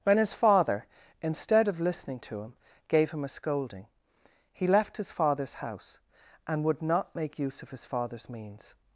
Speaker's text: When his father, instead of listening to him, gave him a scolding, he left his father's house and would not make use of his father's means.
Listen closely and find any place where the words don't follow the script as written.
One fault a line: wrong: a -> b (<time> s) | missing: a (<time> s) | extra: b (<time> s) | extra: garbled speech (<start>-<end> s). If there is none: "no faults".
no faults